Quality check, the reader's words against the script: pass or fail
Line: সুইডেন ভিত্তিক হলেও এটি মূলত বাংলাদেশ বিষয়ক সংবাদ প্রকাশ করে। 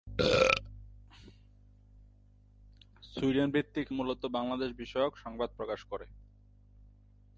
fail